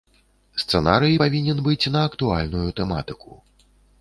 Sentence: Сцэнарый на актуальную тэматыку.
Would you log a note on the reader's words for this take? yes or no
yes